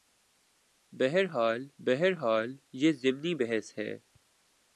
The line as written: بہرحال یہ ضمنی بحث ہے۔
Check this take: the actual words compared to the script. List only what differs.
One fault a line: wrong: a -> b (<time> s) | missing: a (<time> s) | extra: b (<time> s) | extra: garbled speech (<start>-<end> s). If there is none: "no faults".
extra: بہرحال (1.8 s)